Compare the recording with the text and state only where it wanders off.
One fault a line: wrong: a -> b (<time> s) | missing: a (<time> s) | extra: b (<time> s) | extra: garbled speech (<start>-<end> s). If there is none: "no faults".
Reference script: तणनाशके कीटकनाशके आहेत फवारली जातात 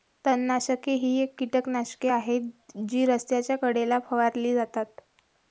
extra: ही (0.9 s)
extra: जी रस्त्याच्या कडेला (2.9 s)